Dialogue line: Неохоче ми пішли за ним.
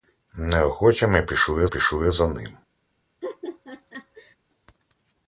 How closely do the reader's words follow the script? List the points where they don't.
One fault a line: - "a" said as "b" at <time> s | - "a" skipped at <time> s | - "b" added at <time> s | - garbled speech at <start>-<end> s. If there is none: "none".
- "пішли" added at 1.6 s